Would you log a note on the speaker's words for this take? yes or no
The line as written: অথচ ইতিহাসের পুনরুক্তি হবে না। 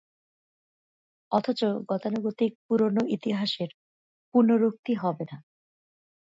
yes